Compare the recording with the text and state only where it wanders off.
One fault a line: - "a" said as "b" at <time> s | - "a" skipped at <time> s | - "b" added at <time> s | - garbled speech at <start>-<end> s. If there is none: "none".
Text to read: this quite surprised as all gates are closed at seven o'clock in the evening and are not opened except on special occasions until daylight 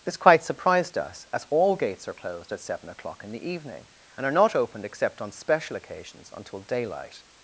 - "us" added at 1.0 s